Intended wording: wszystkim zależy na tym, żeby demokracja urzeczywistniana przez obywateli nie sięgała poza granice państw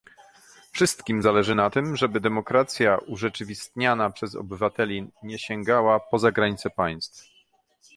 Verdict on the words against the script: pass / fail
pass